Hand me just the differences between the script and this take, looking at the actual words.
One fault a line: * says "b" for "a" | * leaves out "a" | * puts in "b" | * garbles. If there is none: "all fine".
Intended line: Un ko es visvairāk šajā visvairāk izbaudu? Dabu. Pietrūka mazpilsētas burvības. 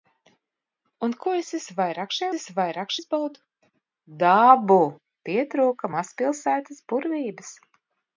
all fine